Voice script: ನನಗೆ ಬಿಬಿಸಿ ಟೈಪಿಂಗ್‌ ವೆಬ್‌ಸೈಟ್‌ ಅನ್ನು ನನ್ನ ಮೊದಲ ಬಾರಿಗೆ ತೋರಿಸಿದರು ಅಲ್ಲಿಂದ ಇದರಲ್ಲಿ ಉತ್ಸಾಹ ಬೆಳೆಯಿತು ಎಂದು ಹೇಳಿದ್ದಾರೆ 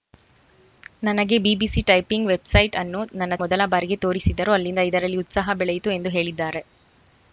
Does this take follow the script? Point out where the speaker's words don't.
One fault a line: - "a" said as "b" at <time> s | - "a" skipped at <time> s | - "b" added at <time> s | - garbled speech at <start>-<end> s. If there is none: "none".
none